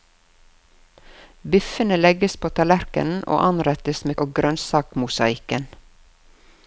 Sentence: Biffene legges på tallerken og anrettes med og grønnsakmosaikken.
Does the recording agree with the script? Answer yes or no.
yes